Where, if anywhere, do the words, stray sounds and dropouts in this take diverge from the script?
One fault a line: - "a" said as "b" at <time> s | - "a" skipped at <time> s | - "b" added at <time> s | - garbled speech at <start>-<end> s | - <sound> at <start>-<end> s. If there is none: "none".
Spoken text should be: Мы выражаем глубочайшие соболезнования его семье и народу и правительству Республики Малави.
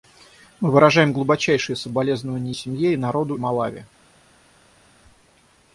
- "его" skipped at 2.5 s
- "и правительству Республики" skipped at 3.4 s